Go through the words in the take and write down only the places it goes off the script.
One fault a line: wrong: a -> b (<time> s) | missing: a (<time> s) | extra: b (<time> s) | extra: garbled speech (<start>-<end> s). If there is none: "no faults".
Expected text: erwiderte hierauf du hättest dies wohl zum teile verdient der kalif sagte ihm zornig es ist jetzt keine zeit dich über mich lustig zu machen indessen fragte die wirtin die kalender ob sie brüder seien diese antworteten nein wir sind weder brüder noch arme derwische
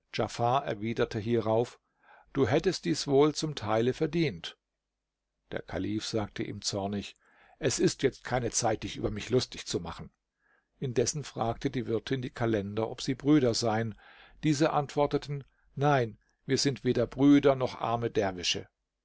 no faults